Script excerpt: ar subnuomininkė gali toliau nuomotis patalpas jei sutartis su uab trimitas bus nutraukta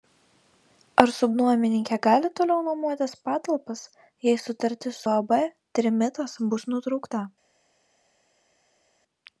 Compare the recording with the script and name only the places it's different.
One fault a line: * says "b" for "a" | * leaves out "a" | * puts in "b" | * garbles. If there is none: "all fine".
* leaves out "su"